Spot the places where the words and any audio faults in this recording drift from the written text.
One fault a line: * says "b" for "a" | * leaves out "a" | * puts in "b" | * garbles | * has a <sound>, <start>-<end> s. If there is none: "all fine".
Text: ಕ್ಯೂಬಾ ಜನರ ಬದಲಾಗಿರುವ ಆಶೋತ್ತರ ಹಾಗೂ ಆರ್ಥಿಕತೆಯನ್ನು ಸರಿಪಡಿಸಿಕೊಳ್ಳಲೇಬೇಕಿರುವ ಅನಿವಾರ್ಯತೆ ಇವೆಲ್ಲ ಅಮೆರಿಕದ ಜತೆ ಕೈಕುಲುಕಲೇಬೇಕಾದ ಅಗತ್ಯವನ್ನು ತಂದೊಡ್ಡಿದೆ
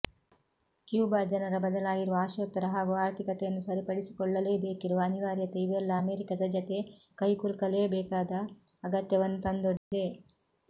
* has a dropout, 9.8-9.9 s